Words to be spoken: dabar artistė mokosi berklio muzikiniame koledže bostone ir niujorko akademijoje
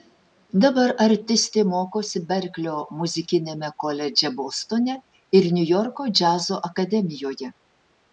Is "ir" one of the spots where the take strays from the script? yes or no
no